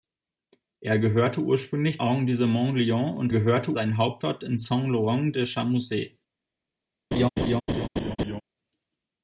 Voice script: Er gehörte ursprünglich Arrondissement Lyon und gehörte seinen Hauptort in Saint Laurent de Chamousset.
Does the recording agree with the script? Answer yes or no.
yes